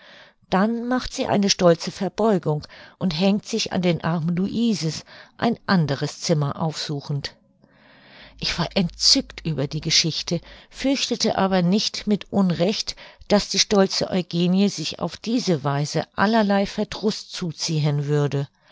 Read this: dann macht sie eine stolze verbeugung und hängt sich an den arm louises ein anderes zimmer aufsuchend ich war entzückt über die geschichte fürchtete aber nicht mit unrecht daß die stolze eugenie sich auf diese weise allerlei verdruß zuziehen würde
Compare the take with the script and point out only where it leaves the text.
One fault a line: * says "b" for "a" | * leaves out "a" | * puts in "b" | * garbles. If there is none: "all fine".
all fine